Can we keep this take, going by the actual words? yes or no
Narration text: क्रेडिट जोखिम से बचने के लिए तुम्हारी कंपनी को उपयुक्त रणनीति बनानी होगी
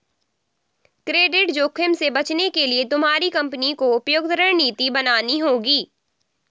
yes